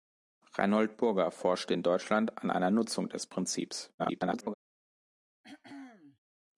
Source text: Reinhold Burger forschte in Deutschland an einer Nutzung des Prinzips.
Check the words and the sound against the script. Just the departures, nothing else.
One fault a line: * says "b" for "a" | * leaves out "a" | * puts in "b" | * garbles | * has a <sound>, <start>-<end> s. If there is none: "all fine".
* garbles
* has a throat clearing, 5.4-6.2 s